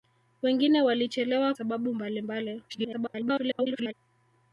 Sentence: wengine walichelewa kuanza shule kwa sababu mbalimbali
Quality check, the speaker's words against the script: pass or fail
fail